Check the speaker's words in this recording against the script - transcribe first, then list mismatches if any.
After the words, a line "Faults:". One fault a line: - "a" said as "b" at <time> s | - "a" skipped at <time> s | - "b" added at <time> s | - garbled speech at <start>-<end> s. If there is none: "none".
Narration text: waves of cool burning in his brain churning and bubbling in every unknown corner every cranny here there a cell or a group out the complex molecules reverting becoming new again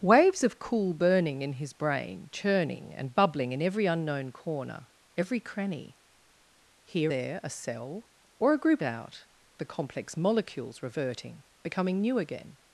waves of cool burning in his brain churning and bubbling in every unknown corner every cranny here there a cell or a group out the complex molecules reverting becoming new again
Faults:
none